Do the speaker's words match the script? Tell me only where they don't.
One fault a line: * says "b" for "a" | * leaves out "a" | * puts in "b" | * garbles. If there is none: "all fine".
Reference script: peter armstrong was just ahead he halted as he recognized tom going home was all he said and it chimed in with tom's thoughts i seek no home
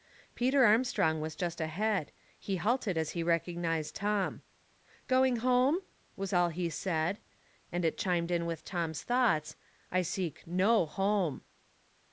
all fine